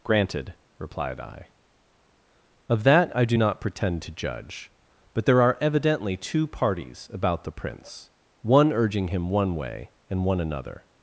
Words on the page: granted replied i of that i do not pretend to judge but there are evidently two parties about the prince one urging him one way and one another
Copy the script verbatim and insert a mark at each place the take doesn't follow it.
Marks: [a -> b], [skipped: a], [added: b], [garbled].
granted replied i of that i do not pretend to judge but there are evidently two parties about the prince one urging him one way and one another